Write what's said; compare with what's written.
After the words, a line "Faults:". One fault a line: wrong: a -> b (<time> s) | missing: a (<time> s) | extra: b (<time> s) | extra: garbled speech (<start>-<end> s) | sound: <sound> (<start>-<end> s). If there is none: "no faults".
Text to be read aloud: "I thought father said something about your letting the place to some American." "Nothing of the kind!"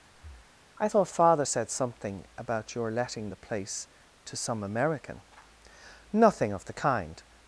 "I thought father said something about your letting the place to some American." "Nothing of the kind!"
Faults:
sound: breath (0.1-0.6 s)